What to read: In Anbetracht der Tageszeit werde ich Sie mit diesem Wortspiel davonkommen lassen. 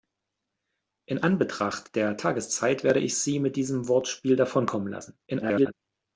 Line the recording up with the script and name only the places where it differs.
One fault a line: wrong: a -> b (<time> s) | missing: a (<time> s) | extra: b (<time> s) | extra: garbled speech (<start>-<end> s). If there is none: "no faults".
extra: garbled speech (5.3-5.7 s)